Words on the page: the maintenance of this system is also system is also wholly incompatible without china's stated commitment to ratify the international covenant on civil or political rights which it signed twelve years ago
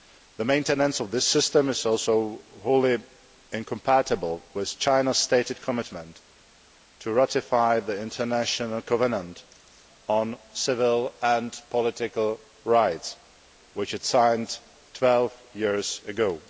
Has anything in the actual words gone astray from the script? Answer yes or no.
yes